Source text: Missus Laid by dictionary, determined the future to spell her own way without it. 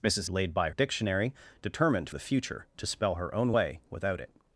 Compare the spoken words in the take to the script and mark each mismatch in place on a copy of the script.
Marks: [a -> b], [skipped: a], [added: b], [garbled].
Missus Laid by dictionary, determined the future to spell her own way without it.